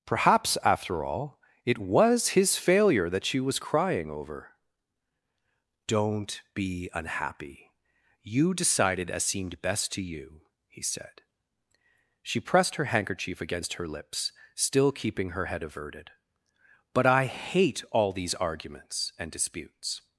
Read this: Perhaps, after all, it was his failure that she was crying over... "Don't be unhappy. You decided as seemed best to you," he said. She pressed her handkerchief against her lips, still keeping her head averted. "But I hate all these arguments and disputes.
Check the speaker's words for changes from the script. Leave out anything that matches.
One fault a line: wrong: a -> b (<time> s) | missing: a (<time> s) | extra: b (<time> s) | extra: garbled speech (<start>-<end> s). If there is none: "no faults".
no faults